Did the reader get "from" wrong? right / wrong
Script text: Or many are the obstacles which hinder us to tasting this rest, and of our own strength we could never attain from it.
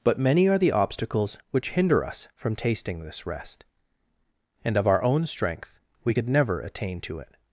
wrong